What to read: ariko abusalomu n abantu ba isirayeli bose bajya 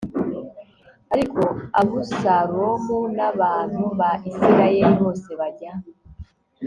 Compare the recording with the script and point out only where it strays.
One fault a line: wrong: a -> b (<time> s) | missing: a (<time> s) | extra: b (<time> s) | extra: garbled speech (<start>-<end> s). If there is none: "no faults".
no faults